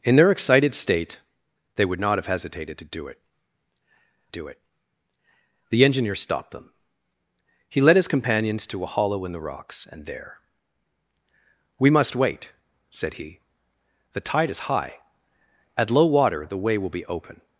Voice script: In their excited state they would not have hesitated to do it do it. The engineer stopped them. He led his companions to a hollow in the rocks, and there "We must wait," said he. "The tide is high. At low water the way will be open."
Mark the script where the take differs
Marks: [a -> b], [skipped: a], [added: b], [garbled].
In their excited state they would not have hesitated to do it do it. The engineer stopped them. He led his companions to a hollow in the rocks, and there "We must wait," said he. "The tide is high. At low water the way will be open."